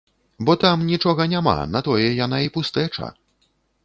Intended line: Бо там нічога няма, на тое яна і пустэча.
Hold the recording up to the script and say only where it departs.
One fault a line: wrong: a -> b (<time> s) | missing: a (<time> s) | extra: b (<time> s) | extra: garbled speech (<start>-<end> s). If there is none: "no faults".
no faults